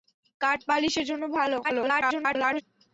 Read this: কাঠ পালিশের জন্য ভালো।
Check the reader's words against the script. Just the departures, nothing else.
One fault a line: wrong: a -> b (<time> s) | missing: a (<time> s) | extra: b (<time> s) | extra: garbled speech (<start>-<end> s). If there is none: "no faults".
extra: garbled speech (1.6-2.6 s)